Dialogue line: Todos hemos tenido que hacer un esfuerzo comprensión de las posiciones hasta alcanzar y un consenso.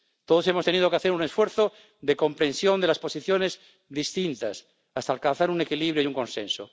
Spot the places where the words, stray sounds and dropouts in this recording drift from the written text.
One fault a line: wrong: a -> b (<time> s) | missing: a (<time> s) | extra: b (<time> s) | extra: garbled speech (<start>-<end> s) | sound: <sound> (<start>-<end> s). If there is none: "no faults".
extra: de (2.0 s)
extra: distintas (3.9 s)
extra: un equilibrio (5.5 s)